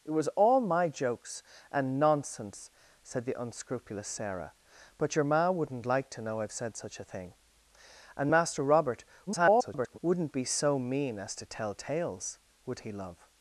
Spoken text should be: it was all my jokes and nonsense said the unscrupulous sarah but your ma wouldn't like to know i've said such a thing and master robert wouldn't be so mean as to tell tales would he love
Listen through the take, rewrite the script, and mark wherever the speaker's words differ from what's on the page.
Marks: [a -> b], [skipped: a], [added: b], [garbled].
it was all my jokes and nonsense said the unscrupulous sarah but your ma wouldn't like to know i've said such a thing and master robert [garbled] wouldn't be so mean as to tell tales would he love